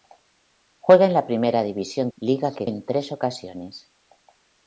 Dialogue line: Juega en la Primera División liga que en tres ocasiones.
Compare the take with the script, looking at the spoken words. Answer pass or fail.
pass